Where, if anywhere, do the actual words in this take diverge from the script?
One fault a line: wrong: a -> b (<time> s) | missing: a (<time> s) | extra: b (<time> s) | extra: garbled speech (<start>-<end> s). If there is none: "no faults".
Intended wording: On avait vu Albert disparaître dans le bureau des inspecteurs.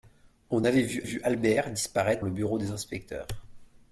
extra: vu (1.0 s)
missing: dans (2.2 s)